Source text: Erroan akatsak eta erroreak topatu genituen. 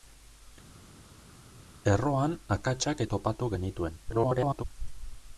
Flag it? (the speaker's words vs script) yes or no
yes